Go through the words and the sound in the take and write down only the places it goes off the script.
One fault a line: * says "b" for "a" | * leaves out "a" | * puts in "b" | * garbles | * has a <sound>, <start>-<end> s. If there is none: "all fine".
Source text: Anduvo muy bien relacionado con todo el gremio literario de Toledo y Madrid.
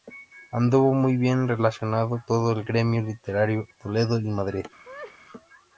* leaves out "con"
* leaves out "de"
* has a laugh, 4.8-5.2 s